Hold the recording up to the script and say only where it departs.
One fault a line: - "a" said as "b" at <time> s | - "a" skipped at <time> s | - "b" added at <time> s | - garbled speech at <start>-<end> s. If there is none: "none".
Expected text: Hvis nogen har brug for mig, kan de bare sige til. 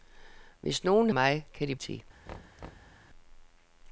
- "har brug for" skipped at 1.1 s
- "bare sige" skipped at 1.7 s